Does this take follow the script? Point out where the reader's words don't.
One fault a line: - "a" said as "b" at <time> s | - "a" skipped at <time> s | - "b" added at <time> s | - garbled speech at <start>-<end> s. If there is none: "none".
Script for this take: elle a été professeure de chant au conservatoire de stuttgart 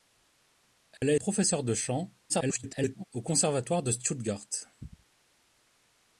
- "été" skipped at 1.1 s
- garbled speech at 2.3-3.0 s